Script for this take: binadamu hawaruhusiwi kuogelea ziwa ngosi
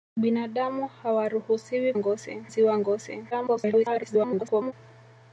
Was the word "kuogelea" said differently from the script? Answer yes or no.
yes